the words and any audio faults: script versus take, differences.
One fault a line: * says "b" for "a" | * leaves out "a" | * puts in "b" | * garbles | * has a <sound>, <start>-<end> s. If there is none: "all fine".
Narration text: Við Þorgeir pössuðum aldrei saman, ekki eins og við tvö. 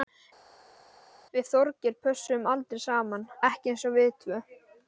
all fine